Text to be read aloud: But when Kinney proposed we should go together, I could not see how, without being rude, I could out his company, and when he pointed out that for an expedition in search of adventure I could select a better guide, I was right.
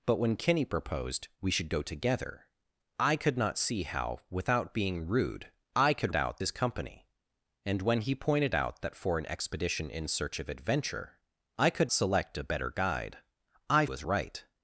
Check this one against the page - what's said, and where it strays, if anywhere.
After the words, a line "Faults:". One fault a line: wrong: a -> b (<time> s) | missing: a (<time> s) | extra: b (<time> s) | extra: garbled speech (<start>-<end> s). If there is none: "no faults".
But when Kinney proposed we should go together, I could not see how, without being rude, I could out his company, and when he pointed out that for an expedition in search of adventure I could select a better guide, I was right.
Faults:
no faults